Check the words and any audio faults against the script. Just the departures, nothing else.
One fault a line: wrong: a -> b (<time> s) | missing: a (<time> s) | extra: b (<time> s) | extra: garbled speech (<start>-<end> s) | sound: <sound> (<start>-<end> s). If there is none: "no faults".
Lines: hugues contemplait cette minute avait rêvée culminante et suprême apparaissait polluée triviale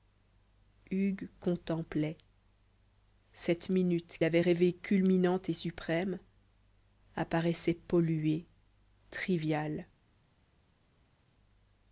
no faults